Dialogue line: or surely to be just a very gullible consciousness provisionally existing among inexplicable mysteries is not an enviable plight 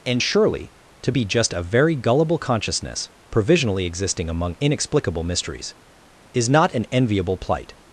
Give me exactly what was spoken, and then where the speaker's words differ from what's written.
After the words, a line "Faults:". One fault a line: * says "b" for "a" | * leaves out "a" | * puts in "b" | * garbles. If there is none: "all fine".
and surely to be just a very gullible consciousness provisionally existing among inexplicable mysteries is not an enviable plight
Faults:
* says "and" for "or"